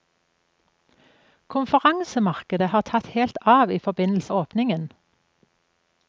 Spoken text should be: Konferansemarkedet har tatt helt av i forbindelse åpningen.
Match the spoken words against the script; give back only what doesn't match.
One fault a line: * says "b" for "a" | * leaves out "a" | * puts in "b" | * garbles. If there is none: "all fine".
all fine